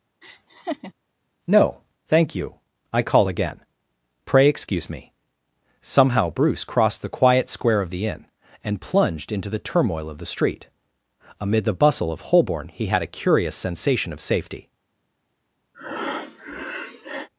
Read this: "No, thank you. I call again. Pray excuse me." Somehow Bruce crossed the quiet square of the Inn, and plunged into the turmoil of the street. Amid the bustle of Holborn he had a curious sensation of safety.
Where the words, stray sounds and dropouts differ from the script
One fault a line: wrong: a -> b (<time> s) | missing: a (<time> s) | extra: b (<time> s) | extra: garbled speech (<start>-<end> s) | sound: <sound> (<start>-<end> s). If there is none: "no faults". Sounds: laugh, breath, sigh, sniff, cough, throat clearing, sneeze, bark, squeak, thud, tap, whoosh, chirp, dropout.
sound: laugh (0.2-0.9 s)
sound: breath (15.7-17.3 s)